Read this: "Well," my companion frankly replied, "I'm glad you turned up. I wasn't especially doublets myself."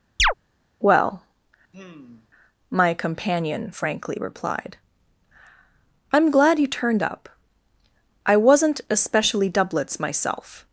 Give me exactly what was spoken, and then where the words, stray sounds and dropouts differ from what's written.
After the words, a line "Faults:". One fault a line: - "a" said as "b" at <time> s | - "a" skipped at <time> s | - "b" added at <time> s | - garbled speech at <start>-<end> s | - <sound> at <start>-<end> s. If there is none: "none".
"Well," my companion frankly replied, "I'm glad you turned up. I wasn't especially doublets myself."
Faults:
- chirp at 0.2-0.3 s
- sigh at 1.7-2.3 s